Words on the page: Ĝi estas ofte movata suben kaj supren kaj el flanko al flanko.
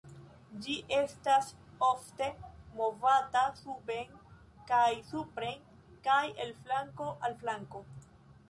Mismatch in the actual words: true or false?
false